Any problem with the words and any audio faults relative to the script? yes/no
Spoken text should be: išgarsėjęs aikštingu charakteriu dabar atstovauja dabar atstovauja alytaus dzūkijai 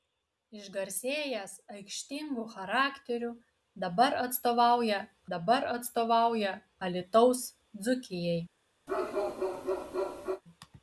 yes